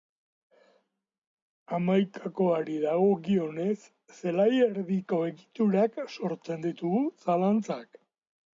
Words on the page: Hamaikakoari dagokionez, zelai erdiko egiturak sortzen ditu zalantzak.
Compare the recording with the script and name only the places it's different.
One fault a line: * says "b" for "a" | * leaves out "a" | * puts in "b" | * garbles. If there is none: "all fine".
all fine